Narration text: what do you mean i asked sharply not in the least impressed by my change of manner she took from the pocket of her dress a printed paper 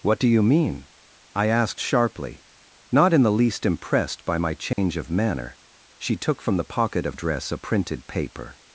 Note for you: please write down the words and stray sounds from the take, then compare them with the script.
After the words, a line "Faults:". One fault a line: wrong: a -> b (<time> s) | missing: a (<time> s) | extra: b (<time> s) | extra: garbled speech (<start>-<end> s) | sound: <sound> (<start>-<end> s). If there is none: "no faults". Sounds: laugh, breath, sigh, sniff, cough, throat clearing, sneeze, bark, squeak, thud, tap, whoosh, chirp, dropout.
what do you mean i asked sharply not in the least impressed by my change of manner she took from the pocket of dress a printed paper
Faults:
sound: dropout (4.7-4.8 s)
missing: her (7.2 s)